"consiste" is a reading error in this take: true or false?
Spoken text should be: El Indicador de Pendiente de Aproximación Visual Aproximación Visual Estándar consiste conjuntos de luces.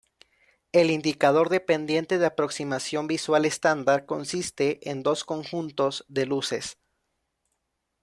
true